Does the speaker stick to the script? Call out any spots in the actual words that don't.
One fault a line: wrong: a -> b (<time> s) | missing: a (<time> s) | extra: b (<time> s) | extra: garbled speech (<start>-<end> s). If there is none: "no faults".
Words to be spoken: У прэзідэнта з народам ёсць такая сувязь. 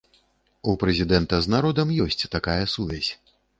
no faults